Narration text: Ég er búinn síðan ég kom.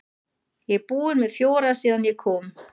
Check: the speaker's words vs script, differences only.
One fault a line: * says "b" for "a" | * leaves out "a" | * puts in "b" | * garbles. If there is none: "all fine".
* puts in "með fjóra"